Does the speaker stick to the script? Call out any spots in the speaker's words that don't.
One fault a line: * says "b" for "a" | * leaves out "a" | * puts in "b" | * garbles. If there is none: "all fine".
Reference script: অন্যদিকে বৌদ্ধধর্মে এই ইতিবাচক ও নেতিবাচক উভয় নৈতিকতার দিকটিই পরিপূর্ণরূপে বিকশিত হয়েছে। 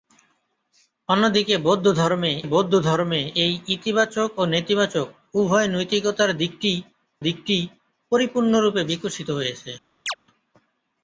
* puts in "বৌদ্ধধর্মে"
* puts in "দিকটিই"